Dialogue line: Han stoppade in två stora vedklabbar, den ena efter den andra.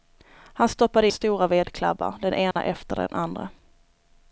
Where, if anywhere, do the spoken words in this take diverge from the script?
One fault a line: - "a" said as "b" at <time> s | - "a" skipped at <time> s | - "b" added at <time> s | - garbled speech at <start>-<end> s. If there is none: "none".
- "in två" skipped at 1.1 s